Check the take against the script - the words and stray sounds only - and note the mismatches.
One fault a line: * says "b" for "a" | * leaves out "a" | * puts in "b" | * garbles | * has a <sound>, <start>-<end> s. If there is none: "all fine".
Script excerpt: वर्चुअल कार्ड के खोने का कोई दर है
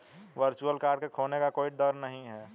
* puts in "नहीं"